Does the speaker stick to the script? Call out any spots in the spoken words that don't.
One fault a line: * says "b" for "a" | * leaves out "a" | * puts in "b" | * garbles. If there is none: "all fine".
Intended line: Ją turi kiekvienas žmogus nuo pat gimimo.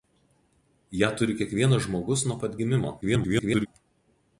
* garbles